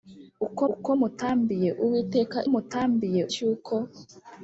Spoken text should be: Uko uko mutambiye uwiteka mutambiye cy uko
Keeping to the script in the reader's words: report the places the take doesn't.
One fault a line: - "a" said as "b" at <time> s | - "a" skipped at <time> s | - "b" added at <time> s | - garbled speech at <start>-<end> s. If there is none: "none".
none